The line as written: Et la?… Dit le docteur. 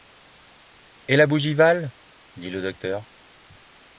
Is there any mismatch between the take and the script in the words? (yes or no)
yes